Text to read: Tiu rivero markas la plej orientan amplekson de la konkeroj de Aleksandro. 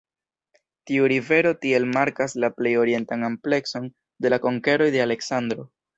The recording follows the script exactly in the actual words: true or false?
false